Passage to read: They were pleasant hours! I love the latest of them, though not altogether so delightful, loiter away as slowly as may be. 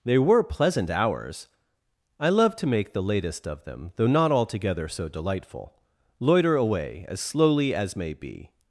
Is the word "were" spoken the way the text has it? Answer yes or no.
yes